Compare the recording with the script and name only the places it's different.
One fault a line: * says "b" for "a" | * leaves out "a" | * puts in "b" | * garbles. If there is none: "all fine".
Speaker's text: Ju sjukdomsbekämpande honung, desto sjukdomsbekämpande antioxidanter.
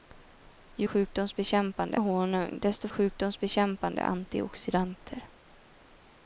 all fine